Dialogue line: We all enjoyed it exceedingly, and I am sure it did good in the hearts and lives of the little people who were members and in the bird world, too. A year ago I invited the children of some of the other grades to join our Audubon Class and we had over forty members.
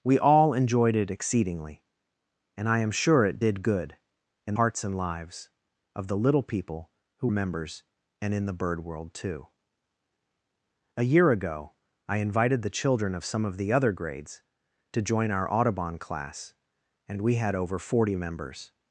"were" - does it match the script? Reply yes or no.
no